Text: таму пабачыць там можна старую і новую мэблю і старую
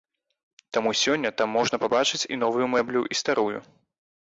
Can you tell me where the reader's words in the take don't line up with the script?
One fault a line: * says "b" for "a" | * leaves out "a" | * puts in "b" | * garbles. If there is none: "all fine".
* says "сёння" for "пабачыць"
* says "пабачыць" for "старую"